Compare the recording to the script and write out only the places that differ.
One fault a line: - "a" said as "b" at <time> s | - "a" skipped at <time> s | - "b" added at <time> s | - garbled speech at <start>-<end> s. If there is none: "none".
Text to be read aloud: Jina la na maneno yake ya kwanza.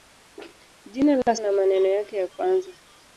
none